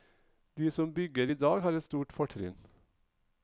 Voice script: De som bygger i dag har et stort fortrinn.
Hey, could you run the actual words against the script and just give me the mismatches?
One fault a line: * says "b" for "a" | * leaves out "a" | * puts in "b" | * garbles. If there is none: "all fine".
all fine